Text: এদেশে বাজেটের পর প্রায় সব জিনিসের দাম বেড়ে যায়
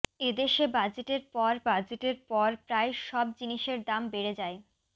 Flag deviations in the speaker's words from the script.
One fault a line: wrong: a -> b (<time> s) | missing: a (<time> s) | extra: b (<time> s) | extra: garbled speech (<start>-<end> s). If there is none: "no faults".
extra: বাজেটের পর (1.7 s)